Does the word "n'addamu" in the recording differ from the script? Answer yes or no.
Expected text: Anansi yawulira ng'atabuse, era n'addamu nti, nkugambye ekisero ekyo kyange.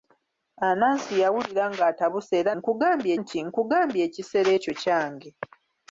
yes